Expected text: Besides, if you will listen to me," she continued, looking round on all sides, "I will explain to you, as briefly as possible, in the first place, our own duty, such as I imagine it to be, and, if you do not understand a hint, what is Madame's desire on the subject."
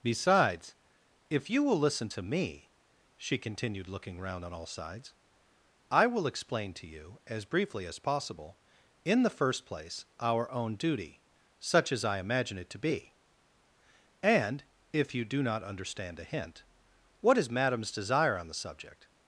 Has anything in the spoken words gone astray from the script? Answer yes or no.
no